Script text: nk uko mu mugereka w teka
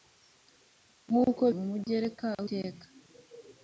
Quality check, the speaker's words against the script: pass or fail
pass